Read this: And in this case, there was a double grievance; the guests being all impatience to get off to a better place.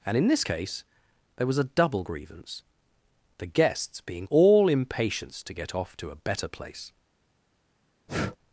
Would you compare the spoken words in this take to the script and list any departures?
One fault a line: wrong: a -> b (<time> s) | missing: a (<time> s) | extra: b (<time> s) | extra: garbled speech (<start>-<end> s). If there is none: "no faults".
no faults